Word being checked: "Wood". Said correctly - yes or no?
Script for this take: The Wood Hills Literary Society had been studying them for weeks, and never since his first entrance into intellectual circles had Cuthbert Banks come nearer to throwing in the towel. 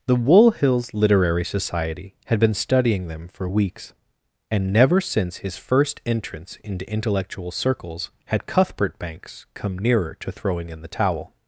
no